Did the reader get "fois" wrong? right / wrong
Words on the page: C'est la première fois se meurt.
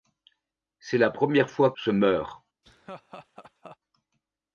right